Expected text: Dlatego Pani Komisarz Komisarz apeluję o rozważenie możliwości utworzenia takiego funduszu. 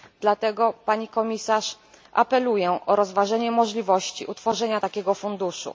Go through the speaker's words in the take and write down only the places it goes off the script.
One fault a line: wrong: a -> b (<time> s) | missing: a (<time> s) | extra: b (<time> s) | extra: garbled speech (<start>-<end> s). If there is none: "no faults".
missing: Komisarz (1.7 s)